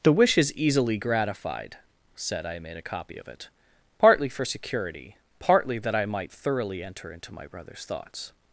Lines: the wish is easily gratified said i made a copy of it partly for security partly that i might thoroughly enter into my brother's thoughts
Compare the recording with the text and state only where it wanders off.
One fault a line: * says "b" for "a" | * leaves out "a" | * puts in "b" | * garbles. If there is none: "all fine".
all fine